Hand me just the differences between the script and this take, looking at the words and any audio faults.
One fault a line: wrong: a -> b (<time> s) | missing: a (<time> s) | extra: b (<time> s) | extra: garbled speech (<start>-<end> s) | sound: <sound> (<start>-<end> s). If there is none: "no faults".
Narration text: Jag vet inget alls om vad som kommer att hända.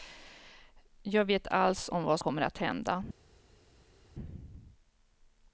missing: inget (1.5 s)
missing: som (2.2 s)